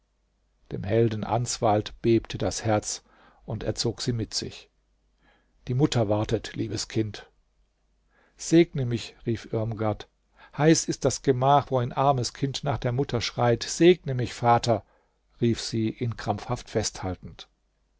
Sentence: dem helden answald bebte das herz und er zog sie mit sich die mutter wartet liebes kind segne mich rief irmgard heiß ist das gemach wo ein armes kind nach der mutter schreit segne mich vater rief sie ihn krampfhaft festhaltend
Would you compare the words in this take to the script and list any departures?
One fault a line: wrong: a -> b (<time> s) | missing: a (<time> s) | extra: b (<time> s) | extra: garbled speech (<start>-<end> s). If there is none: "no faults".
no faults